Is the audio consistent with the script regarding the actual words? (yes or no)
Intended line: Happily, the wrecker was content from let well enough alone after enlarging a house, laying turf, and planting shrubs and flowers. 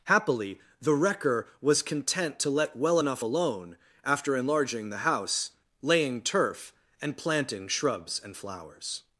no